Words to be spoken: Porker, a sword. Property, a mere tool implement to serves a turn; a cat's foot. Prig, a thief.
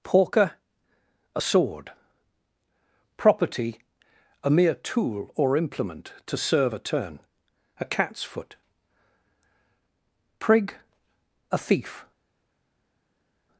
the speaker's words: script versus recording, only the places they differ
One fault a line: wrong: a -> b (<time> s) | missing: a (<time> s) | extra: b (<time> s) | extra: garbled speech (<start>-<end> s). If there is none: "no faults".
extra: or (5.4 s)
wrong: serves -> serve (6.4 s)